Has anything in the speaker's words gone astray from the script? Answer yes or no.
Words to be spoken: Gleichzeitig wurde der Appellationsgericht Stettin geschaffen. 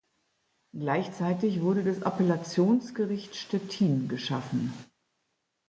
yes